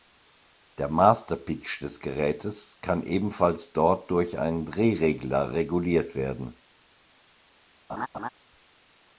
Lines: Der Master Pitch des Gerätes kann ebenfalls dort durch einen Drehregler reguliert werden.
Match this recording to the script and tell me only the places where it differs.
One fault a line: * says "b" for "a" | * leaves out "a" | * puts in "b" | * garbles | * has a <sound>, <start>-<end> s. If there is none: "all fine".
* has a laugh, 7.9-8.3 s